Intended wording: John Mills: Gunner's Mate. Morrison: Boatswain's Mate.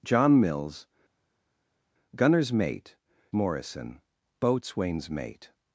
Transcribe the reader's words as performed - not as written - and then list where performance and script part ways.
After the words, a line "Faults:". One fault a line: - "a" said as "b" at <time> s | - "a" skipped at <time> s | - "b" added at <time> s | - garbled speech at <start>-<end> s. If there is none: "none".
John Mills: Gunner's Mate. Morrison: Boatswain's Mate.
Faults:
none